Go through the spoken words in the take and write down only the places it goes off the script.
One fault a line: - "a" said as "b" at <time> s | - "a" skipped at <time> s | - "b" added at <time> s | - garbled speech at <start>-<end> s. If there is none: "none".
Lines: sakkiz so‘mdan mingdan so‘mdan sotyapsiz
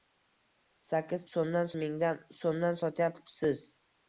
none